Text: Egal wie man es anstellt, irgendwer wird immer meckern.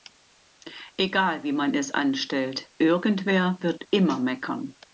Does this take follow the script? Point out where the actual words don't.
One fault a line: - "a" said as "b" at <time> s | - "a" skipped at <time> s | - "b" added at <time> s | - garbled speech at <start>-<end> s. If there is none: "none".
none